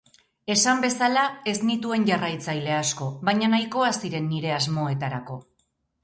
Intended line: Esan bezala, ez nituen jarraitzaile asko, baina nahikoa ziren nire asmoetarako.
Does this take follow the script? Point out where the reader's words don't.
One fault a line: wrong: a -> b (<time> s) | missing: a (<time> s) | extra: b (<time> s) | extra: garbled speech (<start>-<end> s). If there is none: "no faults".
no faults